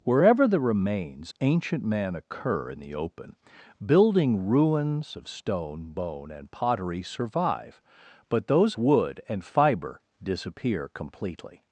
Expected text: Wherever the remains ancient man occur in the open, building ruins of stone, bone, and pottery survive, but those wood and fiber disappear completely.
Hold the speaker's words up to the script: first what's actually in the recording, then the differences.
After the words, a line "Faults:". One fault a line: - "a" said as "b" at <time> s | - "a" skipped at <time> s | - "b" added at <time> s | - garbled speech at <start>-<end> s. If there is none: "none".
Wherever the remains ancient man occur in the open, building ruins of stone, bone, and pottery survive, but those wood and fiber disappear completely.
Faults:
none